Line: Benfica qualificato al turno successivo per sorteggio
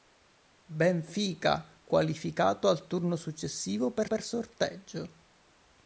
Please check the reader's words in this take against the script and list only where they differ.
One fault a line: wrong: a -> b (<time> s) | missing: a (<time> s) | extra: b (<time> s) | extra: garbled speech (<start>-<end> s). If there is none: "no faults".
extra: per (4.0 s)